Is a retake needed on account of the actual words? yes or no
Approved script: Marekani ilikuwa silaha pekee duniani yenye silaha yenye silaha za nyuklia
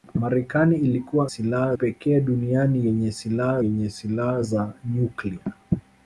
no